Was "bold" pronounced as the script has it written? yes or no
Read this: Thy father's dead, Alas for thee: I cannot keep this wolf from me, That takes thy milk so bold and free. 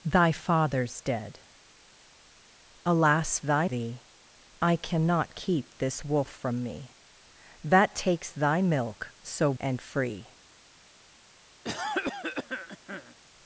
no